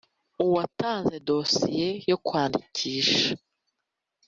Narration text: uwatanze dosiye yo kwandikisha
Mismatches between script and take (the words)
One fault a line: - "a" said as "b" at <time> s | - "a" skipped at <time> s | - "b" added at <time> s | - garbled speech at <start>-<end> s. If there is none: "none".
none